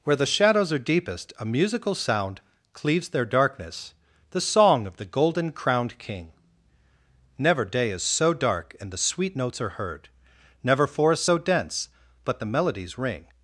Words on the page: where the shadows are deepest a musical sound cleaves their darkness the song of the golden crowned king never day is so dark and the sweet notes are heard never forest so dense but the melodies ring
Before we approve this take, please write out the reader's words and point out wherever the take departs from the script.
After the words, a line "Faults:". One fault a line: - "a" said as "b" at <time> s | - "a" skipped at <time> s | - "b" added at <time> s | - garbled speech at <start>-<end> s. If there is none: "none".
where the shadows are deepest a musical sound cleaves their darkness the song of the golden crowned king never day is so dark and the sweet notes are heard never forest so dense but the melodies ring
Faults:
none